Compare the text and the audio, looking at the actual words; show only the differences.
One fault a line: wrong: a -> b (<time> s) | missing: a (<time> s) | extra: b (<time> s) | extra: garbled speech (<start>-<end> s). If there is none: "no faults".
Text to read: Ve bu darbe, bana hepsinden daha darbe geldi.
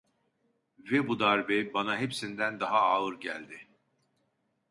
wrong: darbe -> ağır (2.8 s)